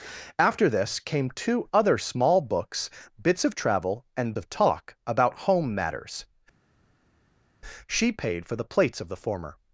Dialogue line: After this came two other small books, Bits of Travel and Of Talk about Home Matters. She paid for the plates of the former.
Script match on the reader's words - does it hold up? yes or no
yes